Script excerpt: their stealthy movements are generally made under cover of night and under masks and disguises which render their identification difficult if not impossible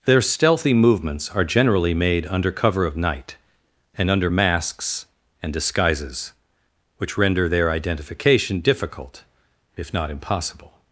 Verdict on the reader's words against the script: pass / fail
pass